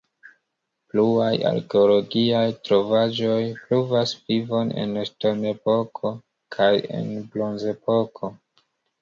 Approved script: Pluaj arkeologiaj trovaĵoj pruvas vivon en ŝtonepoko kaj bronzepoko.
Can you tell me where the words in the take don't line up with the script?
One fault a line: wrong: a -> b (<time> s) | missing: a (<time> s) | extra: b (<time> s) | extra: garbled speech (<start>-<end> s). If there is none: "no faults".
extra: en (7.0 s)